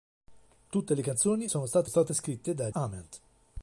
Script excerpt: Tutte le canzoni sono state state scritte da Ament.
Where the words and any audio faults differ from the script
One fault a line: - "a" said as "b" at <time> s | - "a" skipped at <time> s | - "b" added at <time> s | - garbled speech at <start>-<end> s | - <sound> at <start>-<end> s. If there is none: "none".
none